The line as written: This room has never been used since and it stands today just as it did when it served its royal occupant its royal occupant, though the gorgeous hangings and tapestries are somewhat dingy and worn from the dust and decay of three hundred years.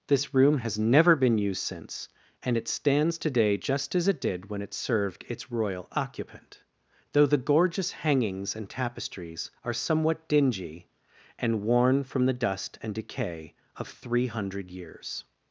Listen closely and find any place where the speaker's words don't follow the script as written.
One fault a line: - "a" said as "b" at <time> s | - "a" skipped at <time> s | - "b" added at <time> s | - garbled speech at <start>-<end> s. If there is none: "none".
- "its royal occupant" skipped at 6.6 s